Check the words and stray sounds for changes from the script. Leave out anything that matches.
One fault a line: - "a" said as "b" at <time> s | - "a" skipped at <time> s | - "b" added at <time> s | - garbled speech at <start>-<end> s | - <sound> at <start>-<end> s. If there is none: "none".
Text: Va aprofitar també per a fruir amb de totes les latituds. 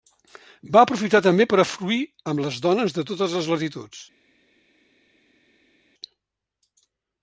- "les dones" added at 2.5 s